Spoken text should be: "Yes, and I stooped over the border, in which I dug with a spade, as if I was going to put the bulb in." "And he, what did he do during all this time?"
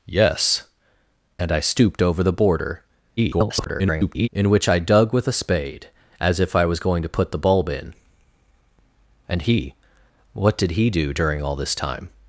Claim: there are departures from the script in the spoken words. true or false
true